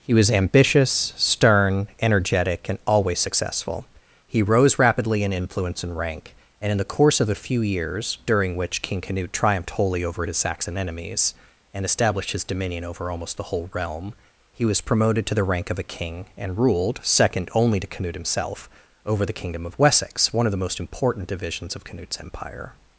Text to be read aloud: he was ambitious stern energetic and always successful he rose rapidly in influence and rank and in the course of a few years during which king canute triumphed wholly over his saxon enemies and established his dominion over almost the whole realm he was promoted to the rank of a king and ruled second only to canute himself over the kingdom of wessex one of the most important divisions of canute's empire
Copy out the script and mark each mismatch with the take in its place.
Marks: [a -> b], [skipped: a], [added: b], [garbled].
he was ambitious stern energetic and always successful he rose rapidly in influence and rank and in the course of a few years during which king canute triumphed wholly over his saxon enemies and established his dominion over almost the whole realm he was promoted to the rank of a king and ruled second only to canute himself over the kingdom of wessex one of the most important divisions of canute's empire